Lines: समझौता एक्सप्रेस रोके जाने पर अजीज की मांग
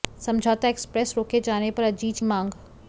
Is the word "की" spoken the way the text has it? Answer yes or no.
no